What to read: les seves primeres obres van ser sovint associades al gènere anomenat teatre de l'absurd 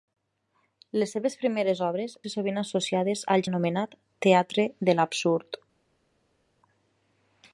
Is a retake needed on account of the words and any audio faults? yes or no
yes